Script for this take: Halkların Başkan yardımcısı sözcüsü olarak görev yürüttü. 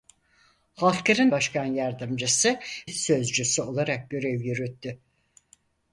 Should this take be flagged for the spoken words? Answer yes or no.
no